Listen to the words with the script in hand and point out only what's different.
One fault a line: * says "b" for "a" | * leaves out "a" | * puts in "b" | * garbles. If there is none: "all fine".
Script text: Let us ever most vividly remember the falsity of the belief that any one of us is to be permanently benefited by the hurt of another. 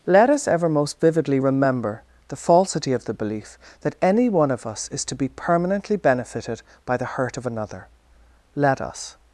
* puts in "Let us"